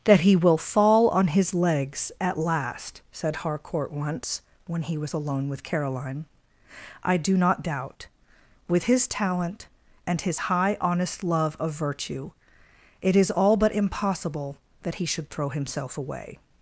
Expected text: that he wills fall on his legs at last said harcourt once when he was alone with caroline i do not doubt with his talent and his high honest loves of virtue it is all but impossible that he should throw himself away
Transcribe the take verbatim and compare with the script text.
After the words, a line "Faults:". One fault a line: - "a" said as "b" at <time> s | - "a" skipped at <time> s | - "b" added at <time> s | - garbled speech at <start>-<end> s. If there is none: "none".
that he will fall on his legs at last said harcourt once when he was alone with caroline i do not doubt with his talent and his high honest love of virtue it is all but impossible that he should throw himself away
Faults:
- "wills" said as "will" at 0.3 s
- "loves" said as "love" at 11.2 s